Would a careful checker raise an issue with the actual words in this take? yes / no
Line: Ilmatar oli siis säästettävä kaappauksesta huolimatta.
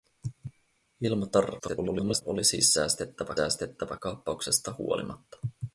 yes